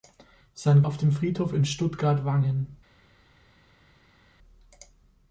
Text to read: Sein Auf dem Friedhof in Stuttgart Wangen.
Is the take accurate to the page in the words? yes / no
yes